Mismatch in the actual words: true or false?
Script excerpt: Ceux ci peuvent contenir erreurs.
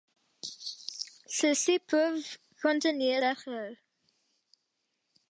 false